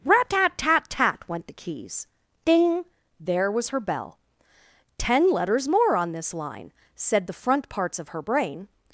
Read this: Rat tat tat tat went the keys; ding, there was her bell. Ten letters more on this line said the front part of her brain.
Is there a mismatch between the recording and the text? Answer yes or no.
yes